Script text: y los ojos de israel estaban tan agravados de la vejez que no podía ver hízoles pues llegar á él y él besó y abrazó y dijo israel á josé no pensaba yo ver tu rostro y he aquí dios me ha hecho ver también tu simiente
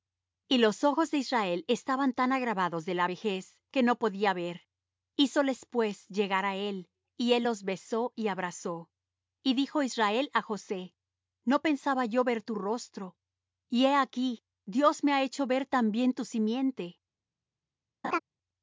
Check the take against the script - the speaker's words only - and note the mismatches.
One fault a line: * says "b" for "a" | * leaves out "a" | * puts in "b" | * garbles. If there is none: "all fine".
* puts in "los"